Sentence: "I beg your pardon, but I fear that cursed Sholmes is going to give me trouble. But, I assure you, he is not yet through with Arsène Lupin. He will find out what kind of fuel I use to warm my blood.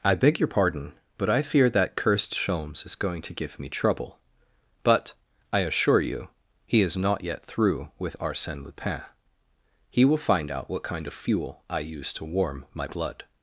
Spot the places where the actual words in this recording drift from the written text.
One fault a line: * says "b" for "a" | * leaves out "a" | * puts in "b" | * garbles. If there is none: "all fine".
all fine